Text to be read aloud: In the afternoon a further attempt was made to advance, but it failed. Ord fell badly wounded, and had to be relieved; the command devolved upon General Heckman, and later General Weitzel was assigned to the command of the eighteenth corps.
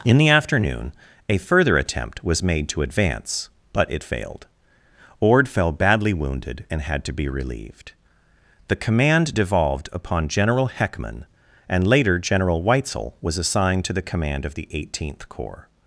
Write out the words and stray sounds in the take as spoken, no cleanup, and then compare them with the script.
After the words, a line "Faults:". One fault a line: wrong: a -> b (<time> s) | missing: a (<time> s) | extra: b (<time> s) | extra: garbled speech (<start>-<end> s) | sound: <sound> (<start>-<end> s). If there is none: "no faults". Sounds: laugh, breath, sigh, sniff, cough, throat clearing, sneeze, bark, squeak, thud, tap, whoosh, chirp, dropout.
In the afternoon a further attempt was made to advance, but it failed. Ord fell badly wounded, and had to be relieved; the command devolved upon General Heckman, and later General Weitzel was assigned to the command of the eighteenth corps.
Faults:
no faults